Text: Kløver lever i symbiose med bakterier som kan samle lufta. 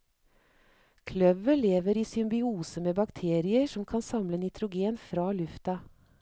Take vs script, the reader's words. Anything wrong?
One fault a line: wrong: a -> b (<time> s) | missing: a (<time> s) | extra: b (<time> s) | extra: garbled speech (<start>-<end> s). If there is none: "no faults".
extra: nitrogen fra (4.4 s)